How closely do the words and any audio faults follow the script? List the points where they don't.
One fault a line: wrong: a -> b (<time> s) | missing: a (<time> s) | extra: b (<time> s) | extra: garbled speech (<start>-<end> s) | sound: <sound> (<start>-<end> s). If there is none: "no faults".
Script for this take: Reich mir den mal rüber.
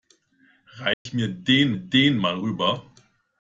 sound: dropout (0.9-1.1 s)
extra: den (1.7 s)